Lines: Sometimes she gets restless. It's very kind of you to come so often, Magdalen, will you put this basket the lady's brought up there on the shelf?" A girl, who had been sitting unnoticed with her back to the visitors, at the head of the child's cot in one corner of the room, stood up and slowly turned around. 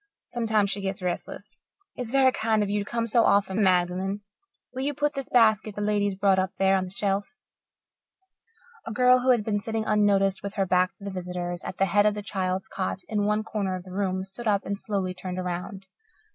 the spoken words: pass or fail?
pass